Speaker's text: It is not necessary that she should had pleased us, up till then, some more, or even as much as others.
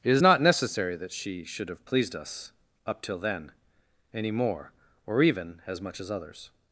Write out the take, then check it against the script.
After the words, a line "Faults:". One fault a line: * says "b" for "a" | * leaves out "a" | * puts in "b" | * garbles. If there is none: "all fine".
It is not necessary that she should have pleased us, up till then, any more, or even as much as others.
Faults:
* says "have" for "had"
* says "any" for "some"